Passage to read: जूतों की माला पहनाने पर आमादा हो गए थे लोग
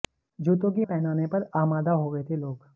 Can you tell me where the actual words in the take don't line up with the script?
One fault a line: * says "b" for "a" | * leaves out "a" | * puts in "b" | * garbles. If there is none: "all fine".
* leaves out "माला"